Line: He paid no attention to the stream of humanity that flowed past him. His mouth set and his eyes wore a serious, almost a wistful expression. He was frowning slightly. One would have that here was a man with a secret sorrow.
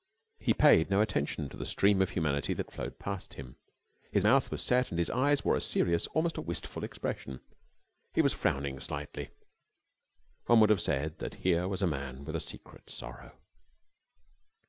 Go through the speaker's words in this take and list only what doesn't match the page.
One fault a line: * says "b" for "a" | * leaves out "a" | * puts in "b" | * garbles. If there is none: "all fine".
* puts in "was"
* puts in "said"